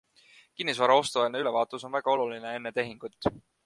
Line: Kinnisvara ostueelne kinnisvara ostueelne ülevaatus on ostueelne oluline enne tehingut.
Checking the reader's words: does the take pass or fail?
fail